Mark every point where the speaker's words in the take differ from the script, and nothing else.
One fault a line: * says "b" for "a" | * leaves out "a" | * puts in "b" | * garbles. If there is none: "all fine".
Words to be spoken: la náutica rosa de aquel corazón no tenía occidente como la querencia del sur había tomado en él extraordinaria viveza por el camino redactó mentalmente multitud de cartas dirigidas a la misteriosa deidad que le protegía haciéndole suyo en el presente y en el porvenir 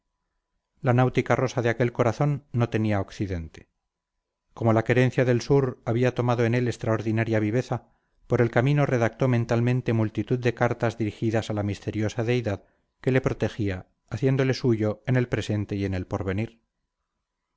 all fine